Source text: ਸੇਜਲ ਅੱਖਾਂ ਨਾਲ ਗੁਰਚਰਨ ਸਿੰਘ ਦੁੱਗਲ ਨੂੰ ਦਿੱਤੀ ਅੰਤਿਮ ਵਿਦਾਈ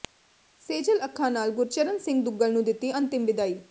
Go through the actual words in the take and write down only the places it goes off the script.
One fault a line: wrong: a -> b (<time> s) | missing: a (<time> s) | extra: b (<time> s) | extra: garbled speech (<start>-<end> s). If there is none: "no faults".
no faults